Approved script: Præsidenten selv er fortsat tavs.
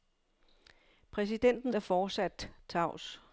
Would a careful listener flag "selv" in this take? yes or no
yes